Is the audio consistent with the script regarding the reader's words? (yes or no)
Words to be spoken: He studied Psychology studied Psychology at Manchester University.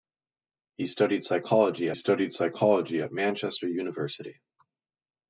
yes